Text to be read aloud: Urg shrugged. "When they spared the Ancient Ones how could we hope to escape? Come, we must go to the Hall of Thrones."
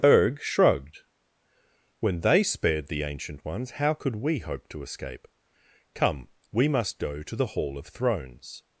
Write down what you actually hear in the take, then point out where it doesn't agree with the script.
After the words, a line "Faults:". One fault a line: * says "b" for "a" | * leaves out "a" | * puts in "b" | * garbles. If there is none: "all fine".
Urg shrugged. "When they spared the Ancient Ones how could we hope to escape? Come, we must go to the Hall of Thrones."
Faults:
all fine